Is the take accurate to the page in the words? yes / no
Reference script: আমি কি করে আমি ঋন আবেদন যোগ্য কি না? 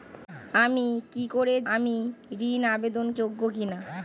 yes